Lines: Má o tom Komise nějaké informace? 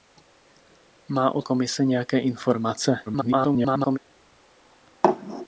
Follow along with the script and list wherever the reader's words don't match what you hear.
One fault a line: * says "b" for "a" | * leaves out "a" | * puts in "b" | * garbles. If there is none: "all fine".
* leaves out "tom"
* garbles